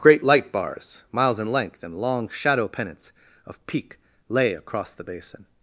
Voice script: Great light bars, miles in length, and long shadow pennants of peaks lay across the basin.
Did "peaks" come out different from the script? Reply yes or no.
yes